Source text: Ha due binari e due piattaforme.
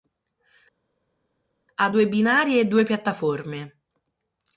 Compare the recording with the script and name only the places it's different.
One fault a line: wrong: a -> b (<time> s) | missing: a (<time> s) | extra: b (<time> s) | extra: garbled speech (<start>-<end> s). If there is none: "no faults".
no faults